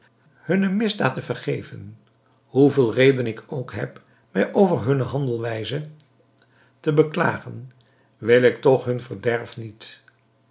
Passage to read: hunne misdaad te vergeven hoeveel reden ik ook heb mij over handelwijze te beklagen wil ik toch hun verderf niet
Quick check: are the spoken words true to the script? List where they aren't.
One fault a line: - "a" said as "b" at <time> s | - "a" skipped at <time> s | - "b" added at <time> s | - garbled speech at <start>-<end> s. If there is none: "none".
- "hunne" added at 4.8 s